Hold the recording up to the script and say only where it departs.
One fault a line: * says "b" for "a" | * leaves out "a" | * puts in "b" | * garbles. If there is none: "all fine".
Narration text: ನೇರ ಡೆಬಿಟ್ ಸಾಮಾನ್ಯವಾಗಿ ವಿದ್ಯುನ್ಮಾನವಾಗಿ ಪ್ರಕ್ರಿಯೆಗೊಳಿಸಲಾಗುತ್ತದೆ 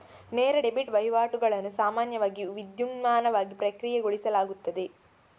* puts in "ವಹಿವಾಟುಗಳನ್ನು"